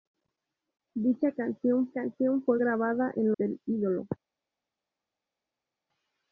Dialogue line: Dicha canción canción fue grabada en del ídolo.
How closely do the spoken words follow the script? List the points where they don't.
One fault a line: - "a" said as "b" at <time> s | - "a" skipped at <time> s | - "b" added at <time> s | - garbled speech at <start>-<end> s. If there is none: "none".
none